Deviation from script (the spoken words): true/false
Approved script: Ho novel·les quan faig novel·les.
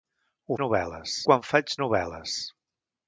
false